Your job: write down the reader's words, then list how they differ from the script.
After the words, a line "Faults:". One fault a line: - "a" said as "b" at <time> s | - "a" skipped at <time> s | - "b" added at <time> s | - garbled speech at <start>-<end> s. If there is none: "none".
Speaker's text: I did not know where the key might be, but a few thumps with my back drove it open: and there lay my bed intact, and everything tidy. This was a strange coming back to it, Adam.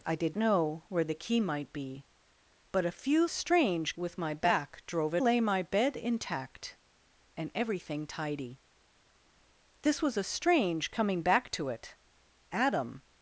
I did know where the key might be, but a few strange with my back drove it lay my bed intact, and everything tidy. This was a strange coming back to it, Adam.
Faults:
- "not" skipped at 0.3 s
- "thumps" said as "strange" at 3.3 s
- "open and there" skipped at 5.2 s